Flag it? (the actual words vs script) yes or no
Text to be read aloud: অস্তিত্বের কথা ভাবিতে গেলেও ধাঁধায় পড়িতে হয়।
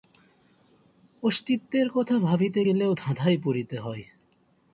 no